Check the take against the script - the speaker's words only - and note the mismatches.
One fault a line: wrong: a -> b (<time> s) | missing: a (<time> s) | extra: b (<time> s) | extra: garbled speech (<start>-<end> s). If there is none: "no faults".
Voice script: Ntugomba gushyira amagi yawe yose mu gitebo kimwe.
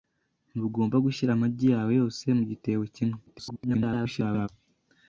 extra: garbled speech (3.3-4.5 s)